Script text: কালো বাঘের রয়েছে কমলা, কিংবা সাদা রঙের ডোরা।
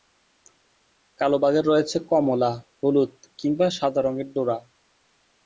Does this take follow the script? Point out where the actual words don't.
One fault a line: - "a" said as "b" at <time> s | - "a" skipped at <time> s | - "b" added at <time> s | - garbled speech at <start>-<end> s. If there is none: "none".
- "হলুদ" added at 2.8 s